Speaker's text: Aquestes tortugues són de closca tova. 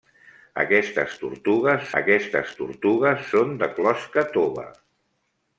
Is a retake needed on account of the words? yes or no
yes